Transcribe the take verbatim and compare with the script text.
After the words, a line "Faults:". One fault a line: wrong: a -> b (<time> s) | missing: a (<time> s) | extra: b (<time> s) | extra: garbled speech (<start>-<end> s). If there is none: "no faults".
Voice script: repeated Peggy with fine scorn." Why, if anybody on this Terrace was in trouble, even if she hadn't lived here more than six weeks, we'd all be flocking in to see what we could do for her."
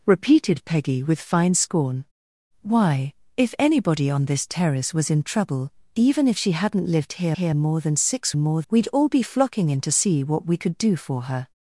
repeated Peggy with fine scorn." Why, if anybody on this Terrace was in trouble, even if she hadn't lived here here more than six more, we'd all be flocking in to see what we could do for her."
Faults:
extra: here (7.3 s)
wrong: weeks -> more (8.4 s)